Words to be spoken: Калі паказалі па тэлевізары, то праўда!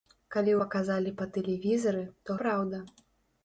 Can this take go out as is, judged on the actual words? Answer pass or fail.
pass